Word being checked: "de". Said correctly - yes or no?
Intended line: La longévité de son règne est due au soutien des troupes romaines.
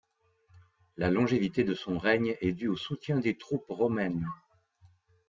yes